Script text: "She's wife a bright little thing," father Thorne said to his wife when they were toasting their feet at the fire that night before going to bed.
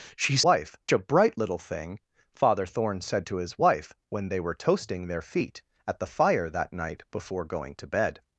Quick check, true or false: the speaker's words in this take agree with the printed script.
true